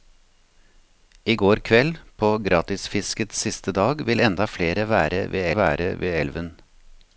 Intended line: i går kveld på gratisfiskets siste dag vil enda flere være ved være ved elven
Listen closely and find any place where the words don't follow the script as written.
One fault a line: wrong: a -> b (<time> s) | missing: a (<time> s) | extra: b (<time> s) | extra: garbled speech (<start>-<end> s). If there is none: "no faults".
no faults